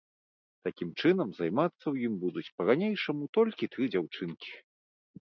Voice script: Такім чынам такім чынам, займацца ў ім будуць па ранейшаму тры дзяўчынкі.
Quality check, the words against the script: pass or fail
fail